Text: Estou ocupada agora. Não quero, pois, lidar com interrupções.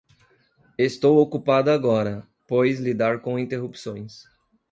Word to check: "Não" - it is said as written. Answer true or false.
false